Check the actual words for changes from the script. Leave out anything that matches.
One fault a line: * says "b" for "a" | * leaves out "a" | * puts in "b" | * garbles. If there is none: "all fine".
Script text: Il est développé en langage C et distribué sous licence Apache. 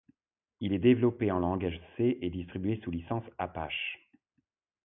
all fine